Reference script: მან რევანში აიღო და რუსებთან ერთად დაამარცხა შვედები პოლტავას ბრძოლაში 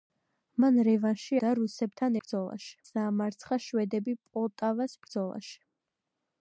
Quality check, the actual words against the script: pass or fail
fail